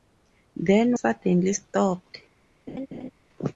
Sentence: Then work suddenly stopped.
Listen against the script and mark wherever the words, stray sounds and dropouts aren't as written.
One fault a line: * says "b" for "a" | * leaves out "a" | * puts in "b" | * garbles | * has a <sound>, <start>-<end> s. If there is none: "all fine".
* leaves out "work"
* has a laugh, 2.7-3.1 s